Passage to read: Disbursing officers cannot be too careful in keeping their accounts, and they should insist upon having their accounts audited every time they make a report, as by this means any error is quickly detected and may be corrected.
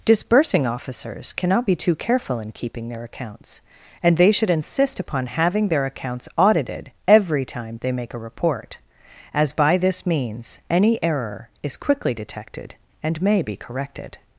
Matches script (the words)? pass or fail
pass